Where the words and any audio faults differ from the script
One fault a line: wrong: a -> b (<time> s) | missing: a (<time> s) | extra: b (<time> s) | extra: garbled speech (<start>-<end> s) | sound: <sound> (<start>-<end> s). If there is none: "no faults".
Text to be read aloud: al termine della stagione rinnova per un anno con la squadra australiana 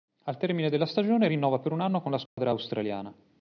sound: dropout (2.3-2.4 s)